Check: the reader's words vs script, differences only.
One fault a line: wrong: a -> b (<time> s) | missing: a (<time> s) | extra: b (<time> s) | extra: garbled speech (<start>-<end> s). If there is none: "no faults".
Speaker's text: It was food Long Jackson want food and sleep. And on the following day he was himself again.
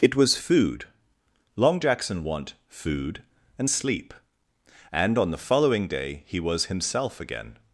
no faults